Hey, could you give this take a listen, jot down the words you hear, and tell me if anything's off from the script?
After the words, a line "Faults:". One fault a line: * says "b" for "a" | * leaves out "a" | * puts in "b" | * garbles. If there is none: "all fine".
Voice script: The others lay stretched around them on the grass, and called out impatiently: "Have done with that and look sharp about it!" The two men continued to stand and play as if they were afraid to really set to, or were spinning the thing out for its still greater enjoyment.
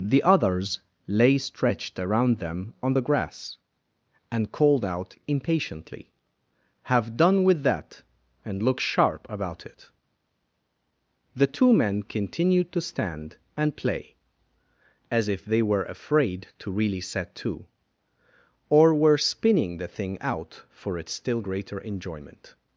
The others lay stretched around them on the grass, and called out impatiently: "Have done with that and look sharp about it!" The two men continued to stand and play as if they were afraid to really set to, or were spinning the thing out for its still greater enjoyment.
Faults:
all fine